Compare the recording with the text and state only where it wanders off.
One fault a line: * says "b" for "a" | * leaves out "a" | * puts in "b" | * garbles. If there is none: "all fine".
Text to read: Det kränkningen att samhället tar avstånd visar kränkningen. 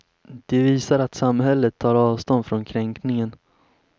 * says "visar" for "kränkningen"
* says "från" for "visar"